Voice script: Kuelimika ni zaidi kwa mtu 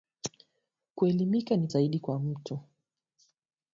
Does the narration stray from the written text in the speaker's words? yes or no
no